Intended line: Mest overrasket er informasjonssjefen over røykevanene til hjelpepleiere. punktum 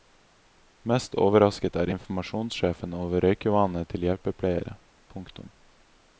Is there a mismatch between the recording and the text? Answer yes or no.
no